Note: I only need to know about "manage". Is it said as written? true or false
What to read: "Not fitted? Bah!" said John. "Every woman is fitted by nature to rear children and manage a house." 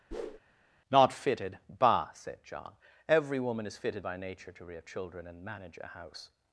true